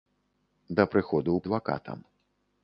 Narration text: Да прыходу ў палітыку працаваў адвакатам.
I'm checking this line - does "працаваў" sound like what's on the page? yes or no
no